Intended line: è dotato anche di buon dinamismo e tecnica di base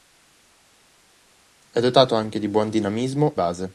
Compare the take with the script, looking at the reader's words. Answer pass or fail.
fail